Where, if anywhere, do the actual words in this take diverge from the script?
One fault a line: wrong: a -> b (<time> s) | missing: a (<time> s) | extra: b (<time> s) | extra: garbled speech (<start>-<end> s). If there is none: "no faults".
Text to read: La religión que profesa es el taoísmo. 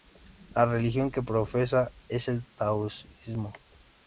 no faults